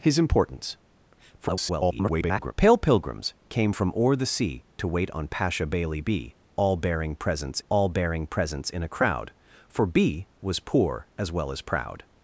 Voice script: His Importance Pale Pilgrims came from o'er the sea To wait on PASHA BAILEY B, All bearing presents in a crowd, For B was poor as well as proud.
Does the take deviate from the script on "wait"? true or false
false